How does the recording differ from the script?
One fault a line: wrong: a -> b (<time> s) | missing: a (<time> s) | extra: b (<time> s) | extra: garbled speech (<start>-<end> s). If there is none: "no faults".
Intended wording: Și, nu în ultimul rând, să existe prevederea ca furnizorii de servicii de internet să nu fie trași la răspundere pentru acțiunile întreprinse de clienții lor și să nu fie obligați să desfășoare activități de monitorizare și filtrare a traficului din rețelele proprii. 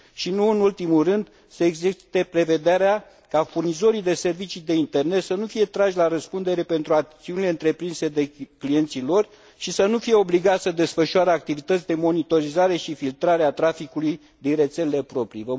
no faults